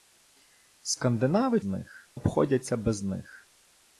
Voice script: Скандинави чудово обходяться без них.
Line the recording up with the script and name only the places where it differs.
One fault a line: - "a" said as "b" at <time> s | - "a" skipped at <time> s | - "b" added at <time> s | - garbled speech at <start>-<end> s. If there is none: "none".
- "чудово" said as "них" at 1.6 s